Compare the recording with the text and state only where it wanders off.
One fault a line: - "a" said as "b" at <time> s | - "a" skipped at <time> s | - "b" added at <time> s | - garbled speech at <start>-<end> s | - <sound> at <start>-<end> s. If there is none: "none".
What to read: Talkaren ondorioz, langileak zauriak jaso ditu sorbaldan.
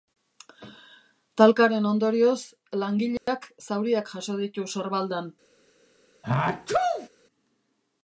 - dropout at 3.2-3.3 s
- sneeze at 6.2-7.1 s